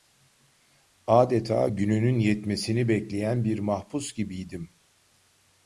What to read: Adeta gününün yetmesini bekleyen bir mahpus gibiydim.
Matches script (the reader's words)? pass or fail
pass